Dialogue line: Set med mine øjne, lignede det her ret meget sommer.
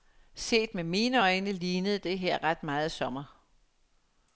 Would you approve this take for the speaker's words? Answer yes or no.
yes